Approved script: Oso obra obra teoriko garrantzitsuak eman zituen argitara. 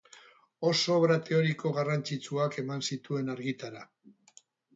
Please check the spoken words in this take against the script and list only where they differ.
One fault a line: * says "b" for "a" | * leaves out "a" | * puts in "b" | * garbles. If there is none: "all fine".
* leaves out "obra"